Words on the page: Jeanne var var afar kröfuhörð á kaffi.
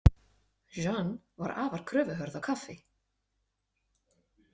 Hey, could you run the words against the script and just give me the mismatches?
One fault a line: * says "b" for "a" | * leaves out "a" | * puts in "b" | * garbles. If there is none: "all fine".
* leaves out "var"